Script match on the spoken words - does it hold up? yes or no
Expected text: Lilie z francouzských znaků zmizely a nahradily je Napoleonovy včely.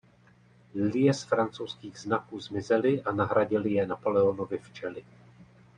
yes